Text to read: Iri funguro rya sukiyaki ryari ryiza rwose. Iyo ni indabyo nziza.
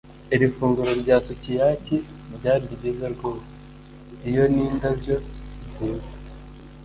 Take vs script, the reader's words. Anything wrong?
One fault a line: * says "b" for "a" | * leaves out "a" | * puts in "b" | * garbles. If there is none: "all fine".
all fine